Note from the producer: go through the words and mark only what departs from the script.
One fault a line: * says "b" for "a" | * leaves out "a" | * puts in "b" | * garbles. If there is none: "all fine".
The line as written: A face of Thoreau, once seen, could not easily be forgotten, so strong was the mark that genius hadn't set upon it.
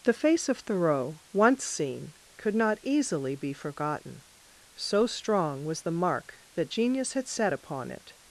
* says "The" for "A"
* says "had" for "hadn't"